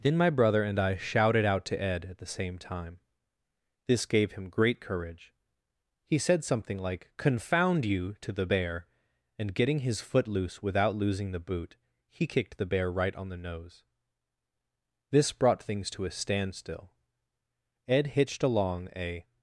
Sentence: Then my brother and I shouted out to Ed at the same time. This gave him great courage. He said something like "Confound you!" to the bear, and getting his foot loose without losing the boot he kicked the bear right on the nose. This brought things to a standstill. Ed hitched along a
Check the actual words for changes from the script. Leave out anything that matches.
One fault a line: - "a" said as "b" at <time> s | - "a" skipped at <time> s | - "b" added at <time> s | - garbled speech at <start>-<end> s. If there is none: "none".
none